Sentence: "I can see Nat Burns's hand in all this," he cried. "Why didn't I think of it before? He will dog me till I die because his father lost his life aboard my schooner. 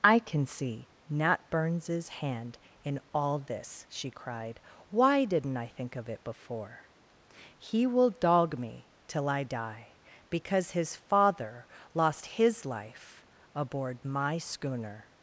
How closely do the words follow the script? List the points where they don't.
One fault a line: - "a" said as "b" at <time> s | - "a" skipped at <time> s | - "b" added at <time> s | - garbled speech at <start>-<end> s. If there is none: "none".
- "he" said as "she" at 3.9 s